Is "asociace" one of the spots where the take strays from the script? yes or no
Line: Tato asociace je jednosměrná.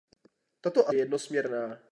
yes